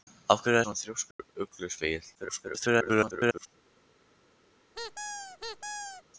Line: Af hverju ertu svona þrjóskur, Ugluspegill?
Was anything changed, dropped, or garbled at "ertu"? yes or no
yes